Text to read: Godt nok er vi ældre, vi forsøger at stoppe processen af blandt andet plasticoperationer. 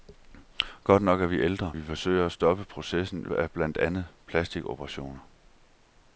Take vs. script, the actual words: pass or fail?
pass